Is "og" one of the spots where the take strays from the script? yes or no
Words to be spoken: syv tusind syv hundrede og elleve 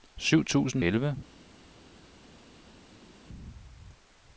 yes